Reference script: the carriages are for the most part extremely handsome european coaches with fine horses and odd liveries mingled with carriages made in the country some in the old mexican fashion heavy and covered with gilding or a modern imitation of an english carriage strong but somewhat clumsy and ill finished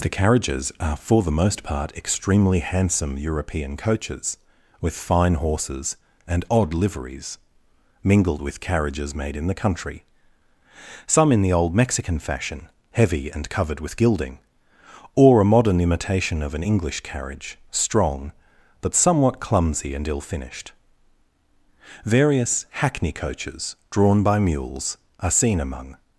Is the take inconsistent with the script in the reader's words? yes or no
yes